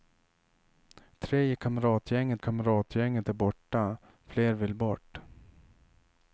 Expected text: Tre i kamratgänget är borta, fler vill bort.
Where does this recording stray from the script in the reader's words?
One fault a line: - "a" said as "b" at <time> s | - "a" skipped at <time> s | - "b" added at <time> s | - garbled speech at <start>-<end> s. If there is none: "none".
- "kamratgänget" added at 2.4 s